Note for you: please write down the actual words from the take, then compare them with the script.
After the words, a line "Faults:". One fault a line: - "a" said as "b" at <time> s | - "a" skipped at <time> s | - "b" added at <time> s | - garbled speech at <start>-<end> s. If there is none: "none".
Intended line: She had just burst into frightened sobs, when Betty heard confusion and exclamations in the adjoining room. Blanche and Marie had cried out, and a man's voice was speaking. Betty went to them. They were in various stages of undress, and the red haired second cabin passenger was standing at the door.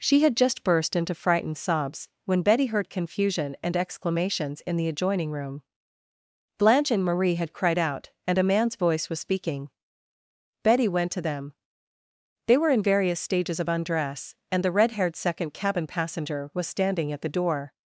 She had just burst into frightened sobs, when Betty heard confusion and exclamations in the adjoining room. Blanche and Marie had cried out, and a man's voice was speaking. Betty went to them. They were in various stages of undress, and the red haired second cabin passenger was standing at the door.
Faults:
none